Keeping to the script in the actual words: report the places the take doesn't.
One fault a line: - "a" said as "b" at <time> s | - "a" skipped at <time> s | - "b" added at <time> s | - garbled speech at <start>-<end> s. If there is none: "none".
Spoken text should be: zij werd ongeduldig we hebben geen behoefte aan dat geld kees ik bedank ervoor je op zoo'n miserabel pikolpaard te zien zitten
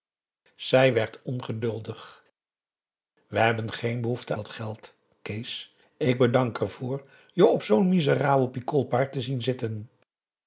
- "aan" skipped at 4.3 s